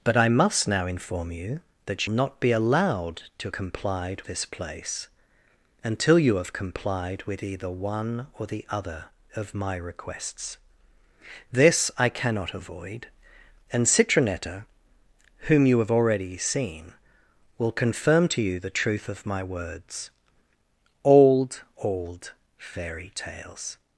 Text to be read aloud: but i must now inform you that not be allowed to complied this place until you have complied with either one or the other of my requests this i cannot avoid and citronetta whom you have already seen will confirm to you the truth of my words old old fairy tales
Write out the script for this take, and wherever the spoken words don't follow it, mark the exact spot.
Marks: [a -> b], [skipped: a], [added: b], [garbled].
but i must now inform you that not be allowed to complied this place until you have complied with either one or the other of my requests this i cannot avoid and citronetta whom you have already seen will confirm to you the truth of my words old old fairy tales